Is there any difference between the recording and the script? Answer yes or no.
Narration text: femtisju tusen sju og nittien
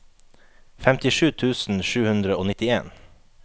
yes